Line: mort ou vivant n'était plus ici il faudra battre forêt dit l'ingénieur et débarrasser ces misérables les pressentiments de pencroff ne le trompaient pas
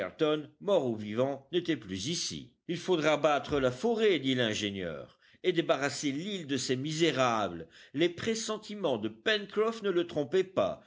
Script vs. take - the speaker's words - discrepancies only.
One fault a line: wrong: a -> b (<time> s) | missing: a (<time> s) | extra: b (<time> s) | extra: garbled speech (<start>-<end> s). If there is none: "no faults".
extra: la (3.6 s)
extra: l'île de (6.1 s)